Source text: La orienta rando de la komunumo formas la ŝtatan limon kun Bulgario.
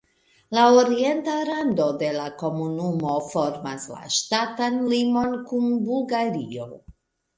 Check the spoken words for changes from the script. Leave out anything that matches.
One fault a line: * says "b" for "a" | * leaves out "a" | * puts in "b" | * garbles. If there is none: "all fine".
all fine